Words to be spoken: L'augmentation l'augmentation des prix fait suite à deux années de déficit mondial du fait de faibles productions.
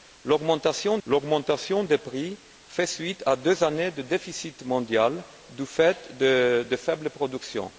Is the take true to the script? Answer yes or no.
yes